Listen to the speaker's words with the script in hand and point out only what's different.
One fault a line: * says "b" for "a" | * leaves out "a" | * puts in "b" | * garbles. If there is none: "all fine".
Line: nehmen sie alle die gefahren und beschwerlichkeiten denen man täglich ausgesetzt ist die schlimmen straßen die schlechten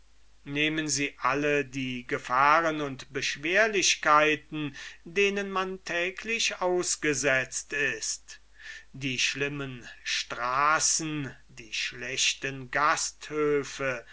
all fine